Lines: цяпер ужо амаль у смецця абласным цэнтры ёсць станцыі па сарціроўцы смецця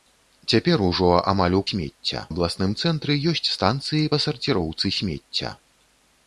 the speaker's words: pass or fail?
pass